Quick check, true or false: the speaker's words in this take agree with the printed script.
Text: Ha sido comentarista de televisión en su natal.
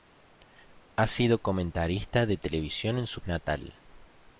true